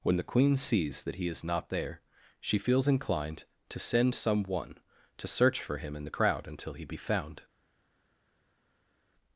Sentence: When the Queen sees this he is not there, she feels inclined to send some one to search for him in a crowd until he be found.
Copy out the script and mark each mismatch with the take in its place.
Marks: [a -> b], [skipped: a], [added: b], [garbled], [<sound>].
When the Queen sees [this -> that] he is not there, she feels inclined to send some one to search for him in [a -> the] crowd until he be found.